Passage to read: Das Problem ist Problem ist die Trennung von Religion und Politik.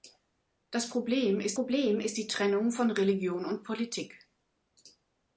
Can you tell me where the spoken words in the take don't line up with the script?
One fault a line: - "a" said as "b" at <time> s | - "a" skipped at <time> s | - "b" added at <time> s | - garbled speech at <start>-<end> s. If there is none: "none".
none